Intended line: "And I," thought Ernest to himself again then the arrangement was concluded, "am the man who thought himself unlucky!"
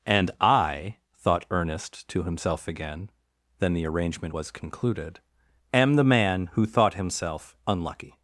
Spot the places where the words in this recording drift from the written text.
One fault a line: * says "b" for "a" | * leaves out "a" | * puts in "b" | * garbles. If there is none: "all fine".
all fine